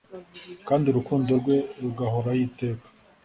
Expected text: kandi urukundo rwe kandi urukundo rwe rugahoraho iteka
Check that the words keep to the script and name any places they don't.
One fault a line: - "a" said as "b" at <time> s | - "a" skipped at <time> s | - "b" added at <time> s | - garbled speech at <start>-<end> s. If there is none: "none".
- "kandi urukundo rwe" skipped at 1.6 s